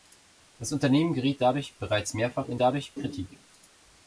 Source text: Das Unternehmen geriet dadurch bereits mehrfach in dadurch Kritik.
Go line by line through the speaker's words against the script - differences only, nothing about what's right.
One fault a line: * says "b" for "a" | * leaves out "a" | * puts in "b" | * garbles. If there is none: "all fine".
all fine